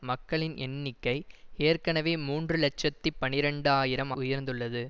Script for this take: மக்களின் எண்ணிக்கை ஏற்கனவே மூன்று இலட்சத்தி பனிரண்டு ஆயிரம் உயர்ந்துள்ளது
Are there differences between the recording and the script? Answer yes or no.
no